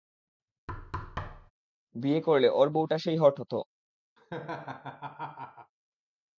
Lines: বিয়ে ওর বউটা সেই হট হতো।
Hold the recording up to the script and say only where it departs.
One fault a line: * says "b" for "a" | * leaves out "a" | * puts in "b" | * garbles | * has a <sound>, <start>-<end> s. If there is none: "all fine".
* has a thud, 0.7-1.5 s
* puts in "করলে"
* has a laugh, 4.2-5.7 s